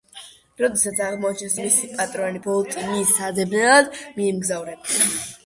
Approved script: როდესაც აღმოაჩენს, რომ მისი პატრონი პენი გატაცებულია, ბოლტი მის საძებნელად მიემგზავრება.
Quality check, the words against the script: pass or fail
fail